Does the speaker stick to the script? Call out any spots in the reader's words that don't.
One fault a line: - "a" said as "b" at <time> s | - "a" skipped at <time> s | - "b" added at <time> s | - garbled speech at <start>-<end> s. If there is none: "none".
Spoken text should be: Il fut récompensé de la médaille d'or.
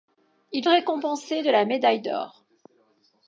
- "fut" skipped at 0.7 s